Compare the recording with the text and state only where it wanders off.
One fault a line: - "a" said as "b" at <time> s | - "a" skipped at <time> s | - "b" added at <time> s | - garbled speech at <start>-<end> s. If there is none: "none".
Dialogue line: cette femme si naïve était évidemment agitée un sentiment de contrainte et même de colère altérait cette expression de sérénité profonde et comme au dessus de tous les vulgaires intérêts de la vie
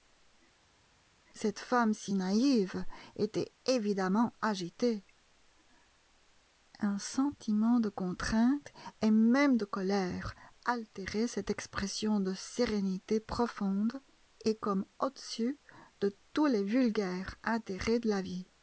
none